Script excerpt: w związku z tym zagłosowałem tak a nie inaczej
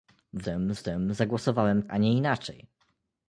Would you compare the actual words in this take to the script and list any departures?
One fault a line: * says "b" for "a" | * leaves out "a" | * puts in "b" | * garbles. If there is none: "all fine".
* says "tym" for "związku"
* leaves out "tak"